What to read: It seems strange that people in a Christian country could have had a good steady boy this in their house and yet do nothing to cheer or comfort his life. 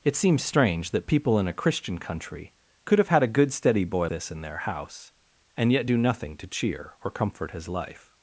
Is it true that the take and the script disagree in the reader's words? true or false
false